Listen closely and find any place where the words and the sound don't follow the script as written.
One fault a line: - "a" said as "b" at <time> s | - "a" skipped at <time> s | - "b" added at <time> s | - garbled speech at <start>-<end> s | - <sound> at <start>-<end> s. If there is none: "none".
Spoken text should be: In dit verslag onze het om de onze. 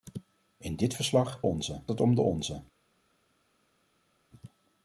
none